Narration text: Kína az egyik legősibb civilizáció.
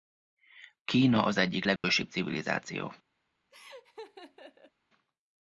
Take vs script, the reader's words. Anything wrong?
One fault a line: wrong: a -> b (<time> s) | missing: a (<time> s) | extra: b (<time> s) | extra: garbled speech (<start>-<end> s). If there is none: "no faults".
no faults